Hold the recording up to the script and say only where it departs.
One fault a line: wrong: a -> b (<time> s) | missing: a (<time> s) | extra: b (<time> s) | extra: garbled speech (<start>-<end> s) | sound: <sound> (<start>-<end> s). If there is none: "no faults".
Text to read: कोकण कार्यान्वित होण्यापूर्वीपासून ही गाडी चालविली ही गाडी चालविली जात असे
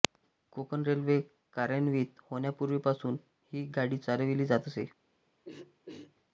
extra: रेल्वे (0.8 s)
missing: ही गाडी चालविली (4.5 s)
sound: throat clearing (5.4-6.2 s)